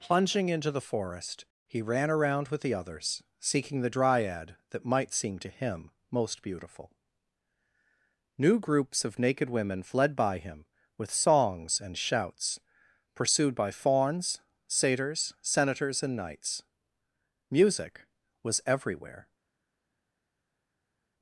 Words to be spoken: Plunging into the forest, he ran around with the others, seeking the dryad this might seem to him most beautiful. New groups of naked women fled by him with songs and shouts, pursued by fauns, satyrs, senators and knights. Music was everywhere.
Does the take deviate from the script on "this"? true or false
true